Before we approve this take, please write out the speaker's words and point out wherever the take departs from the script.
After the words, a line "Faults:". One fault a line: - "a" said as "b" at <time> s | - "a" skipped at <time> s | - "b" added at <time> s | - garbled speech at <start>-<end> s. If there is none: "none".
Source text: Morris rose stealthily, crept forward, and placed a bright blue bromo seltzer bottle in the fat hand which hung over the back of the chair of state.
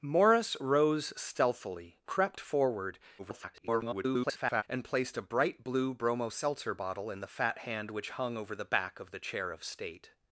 Morris rose stealthily, crept forward, [garbled] and placed a bright blue bromo seltzer bottle in the fat hand which hung over the back of the chair of state.
Faults:
- garbled speech at 3.2-4.6 s